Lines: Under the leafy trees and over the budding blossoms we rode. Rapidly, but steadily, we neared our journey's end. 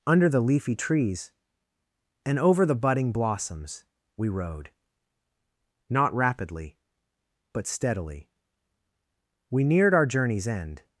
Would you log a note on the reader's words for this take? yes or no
yes